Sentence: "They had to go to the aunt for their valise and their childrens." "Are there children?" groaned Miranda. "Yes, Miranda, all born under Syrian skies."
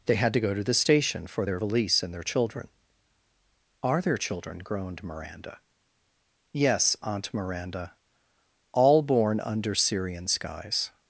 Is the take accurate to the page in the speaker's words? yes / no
no